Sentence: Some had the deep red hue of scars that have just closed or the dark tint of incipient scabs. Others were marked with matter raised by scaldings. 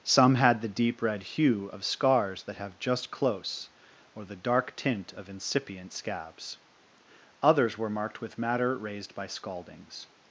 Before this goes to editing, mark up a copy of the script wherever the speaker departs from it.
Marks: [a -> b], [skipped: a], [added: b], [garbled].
Some had the deep red hue of scars that have just [closed -> close] or the dark tint of incipient scabs. Others were marked with matter raised by scaldings.